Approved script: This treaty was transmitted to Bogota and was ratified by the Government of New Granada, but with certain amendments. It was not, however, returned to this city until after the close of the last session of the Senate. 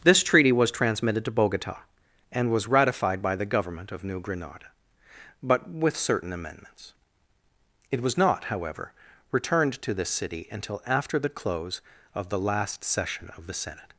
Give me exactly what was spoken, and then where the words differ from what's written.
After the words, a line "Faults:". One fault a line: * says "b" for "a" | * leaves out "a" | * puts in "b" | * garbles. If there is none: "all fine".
This treaty was transmitted to Bogota and was ratified by the Government of New Granada, but with certain amendments. It was not, however, returned to this city until after the close of the last session of the Senate.
Faults:
all fine